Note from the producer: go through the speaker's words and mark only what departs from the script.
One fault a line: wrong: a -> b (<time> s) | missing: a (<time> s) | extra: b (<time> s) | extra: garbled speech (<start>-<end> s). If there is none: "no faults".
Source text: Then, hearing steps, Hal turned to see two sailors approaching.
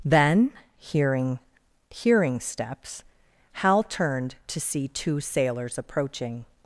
extra: hearing (1.9 s)